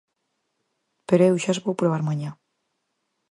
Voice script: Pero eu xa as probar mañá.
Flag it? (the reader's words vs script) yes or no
yes